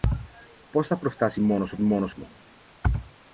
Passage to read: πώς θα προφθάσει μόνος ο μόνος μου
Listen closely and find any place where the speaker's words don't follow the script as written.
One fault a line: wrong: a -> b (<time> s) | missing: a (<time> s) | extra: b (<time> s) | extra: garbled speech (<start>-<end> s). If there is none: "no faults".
no faults